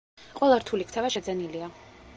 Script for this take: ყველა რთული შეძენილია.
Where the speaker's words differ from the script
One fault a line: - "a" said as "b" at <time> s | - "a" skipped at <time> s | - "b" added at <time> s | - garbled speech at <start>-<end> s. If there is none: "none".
- "ქცევა" added at 0.9 s